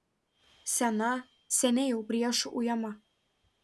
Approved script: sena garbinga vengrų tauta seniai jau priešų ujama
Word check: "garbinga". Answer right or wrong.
wrong